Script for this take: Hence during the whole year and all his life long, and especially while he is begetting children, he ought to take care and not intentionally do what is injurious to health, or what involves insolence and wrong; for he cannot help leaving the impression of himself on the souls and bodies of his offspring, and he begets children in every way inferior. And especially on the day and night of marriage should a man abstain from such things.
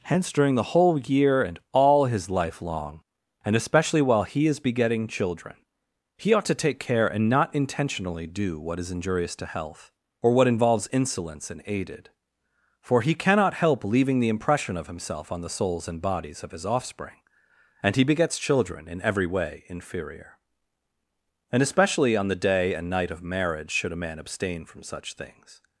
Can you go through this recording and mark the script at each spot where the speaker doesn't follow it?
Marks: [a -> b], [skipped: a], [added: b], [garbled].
Hence during the whole year and all his life long, and especially while he is begetting children, he ought to take care and not intentionally do what is injurious to health, or what involves insolence and [wrong; -> aided] for he cannot help leaving the impression of himself on the souls and bodies of his offspring, and he begets children in every way inferior. And especially on the day and night of marriage should a man abstain from such things.